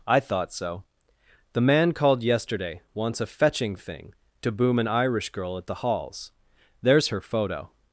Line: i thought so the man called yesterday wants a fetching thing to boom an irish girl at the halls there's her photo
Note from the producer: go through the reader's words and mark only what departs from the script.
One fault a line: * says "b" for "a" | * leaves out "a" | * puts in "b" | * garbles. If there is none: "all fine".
all fine